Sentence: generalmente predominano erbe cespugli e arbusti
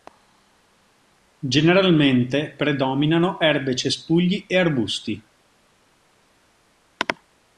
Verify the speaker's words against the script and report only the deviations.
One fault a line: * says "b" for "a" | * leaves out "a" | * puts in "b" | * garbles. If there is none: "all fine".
all fine